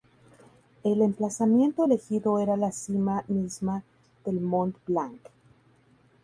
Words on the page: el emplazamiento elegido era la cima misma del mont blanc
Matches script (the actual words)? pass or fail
pass